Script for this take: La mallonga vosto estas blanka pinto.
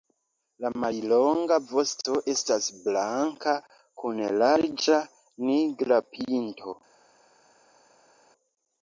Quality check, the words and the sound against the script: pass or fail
fail